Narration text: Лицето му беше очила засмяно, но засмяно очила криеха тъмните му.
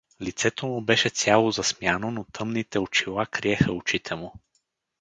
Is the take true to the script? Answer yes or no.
no